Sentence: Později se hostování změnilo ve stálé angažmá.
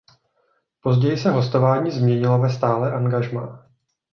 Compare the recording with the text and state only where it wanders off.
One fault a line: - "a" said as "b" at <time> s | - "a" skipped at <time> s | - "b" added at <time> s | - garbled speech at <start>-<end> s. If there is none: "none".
none